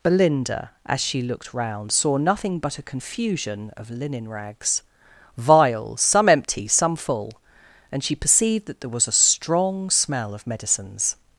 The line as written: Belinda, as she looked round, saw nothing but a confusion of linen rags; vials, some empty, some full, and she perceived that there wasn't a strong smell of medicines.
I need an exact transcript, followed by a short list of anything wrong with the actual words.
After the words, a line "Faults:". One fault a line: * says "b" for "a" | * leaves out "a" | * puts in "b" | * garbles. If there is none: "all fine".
Belinda, as she looked round, saw nothing but a confusion of linen rags; vials, some empty, some full, and she perceived that there was a strong smell of medicines.
Faults:
* says "was" for "wasn't"